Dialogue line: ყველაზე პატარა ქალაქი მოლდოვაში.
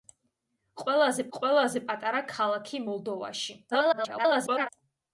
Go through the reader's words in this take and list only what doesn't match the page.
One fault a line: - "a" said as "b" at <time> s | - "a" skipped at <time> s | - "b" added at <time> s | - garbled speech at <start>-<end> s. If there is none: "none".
- "ყველაზე" added at 1.4 s
- garbled speech at 3.7-4.7 s